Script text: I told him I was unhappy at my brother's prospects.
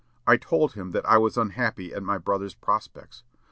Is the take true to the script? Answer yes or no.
no